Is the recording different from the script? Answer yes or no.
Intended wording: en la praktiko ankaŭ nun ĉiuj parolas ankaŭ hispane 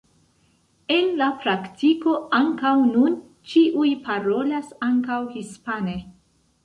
no